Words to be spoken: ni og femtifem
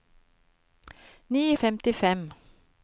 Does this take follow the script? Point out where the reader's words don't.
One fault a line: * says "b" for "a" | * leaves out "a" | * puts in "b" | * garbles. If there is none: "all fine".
all fine